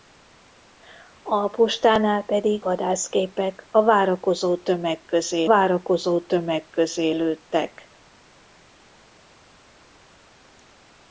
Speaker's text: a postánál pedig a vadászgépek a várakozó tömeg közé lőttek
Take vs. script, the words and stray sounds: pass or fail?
fail